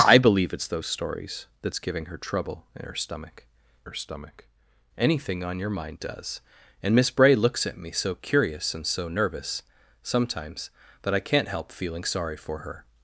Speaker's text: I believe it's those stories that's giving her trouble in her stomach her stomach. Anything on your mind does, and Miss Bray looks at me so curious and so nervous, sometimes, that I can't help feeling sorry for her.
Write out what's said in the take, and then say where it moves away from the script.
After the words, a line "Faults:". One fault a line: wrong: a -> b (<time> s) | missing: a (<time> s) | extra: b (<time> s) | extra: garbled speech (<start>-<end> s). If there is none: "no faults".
I believe it's those stories that's giving her trouble in her stomach her stomach. Anything on your mind does, and Miss Bray looks at me so curious and so nervous, sometimes, that I can't help feeling sorry for her.
Faults:
no faults